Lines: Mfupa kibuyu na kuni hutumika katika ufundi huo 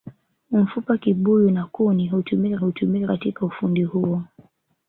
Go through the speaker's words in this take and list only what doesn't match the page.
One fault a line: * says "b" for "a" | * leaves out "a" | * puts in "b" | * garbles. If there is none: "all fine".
* puts in "hutumika"